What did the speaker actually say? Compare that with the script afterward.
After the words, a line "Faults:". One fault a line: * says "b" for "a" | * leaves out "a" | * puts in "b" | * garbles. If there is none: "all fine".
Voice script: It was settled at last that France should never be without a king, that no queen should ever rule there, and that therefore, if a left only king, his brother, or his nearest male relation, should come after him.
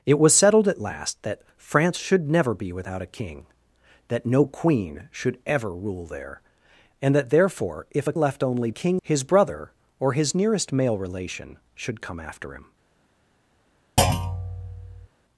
It was settled at last that France should never be without a king, that no queen should ever rule there, and that therefore, if a left only king, his brother, or his nearest male relation, should come after him.
Faults:
all fine